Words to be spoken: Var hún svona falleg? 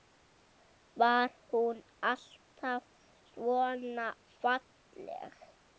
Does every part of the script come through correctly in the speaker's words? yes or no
no